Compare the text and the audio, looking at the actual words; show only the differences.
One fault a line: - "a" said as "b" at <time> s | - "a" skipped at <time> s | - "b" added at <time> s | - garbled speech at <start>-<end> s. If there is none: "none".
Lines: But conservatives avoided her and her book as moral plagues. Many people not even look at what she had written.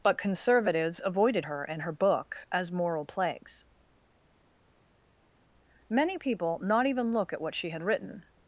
none